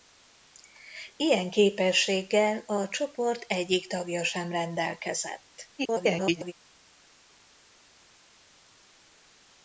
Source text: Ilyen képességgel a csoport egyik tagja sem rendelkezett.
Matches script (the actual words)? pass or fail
fail